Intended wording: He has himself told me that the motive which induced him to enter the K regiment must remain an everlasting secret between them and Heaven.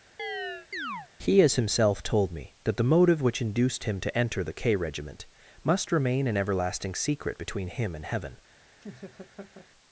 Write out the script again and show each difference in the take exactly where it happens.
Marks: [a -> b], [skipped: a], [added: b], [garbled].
He has himself told me that the motive which induced him to enter the K regiment must remain an everlasting secret between [them -> him] and Heaven.